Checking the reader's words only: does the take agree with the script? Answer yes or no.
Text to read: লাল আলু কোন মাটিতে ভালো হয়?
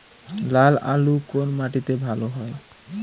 yes